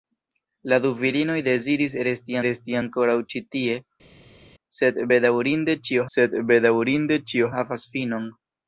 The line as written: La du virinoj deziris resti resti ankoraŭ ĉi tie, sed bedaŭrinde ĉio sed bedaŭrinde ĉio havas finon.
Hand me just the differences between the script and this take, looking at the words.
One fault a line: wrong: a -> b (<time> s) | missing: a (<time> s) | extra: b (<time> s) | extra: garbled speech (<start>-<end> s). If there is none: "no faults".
no faults